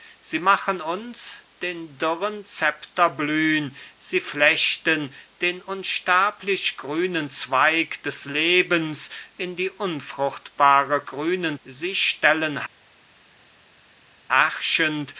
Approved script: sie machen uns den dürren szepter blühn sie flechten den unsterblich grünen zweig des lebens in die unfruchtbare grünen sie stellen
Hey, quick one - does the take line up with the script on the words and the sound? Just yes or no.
yes